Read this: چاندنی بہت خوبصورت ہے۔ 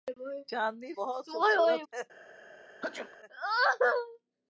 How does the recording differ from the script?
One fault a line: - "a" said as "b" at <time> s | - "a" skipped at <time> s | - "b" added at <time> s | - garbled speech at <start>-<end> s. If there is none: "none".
none